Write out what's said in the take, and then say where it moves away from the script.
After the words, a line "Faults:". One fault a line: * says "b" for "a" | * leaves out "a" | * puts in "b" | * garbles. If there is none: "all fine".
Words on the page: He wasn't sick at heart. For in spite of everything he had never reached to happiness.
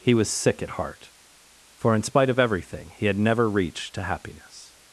He was sick at heart. For in spite of everything he had never reached to happiness.
Faults:
* says "was" for "wasn't"